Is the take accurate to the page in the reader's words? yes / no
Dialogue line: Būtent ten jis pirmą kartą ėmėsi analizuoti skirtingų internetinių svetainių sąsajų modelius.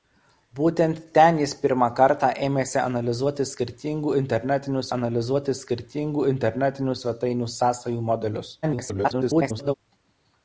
no